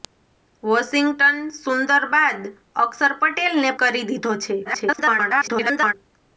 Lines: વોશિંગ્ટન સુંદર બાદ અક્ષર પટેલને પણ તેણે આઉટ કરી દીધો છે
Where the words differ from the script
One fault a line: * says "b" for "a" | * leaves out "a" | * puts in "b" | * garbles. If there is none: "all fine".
* leaves out "પણ તેણે આઉટ"
* garbles